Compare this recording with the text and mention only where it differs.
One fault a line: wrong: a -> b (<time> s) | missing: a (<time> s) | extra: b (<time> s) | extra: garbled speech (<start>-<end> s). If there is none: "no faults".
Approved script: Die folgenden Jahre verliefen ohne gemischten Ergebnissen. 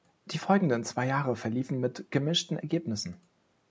extra: zwei (0.8 s)
wrong: ohne -> mit (1.8 s)